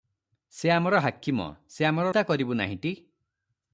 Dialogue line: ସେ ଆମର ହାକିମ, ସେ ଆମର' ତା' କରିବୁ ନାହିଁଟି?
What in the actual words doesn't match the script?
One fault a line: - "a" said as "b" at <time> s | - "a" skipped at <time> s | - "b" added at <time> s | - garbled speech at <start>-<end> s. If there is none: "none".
none